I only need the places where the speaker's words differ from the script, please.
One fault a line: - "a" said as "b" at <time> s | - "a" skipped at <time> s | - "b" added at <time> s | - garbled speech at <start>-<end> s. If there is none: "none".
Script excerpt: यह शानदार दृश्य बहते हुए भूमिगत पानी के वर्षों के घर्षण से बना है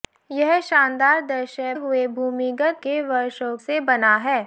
- "बहते" skipped at 1.7 s
- "पानी" skipped at 2.8 s
- "के घर्षण" skipped at 3.6 s